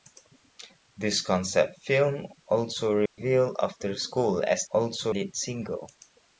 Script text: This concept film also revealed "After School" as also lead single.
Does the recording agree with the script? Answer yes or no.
yes